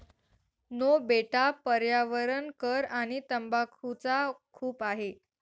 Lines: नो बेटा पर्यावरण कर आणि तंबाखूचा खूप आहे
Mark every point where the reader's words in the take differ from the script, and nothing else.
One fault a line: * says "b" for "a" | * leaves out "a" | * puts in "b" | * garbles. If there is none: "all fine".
all fine